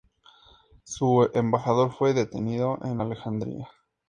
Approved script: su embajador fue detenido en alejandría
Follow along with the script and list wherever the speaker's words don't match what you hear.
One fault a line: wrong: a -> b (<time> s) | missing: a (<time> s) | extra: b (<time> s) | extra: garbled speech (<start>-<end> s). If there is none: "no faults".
no faults